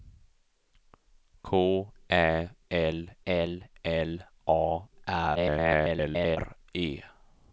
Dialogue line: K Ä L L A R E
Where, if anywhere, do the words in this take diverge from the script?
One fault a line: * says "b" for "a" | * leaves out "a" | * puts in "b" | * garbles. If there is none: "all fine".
* puts in "L"
* garbles